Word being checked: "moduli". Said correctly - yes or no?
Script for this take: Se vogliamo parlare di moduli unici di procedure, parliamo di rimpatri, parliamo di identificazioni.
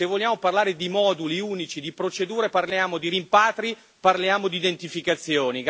yes